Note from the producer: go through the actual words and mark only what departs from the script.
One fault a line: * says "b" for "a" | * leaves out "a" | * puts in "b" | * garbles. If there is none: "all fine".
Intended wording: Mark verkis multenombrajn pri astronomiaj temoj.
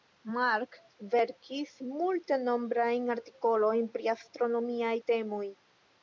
* puts in "artikolojn"